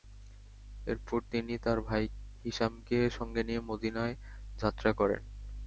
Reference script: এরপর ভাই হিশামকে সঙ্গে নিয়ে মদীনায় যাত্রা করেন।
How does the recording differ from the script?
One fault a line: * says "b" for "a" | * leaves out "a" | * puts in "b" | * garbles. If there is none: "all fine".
* puts in "তিনি তার"